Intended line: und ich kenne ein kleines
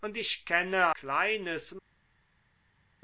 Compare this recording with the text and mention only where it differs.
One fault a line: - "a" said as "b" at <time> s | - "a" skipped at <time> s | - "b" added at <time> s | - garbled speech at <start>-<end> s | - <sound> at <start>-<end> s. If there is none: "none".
- "ein" skipped at 0.9 s